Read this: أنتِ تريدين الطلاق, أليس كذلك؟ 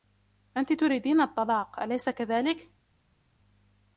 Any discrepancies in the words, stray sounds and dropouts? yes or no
no